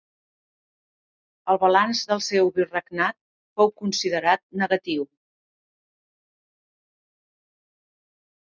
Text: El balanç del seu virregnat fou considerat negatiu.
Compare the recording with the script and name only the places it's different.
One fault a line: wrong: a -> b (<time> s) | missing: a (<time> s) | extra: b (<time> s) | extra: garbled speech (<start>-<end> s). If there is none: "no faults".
no faults